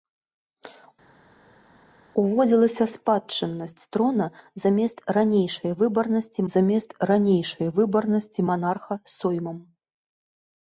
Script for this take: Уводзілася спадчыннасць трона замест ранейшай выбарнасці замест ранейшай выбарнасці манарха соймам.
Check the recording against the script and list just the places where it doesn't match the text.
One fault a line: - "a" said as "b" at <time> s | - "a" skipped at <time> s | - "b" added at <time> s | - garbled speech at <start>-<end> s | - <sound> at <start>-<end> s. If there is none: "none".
none